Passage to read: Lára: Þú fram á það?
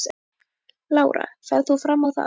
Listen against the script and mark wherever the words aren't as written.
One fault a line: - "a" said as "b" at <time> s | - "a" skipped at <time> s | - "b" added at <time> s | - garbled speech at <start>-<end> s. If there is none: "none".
- "Ferð" added at 1.5 s